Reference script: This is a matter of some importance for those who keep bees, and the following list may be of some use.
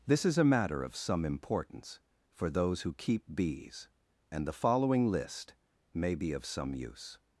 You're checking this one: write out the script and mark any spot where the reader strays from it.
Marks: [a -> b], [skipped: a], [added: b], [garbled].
This is a matter of some importance for those who keep bees, and the following list may be of some use.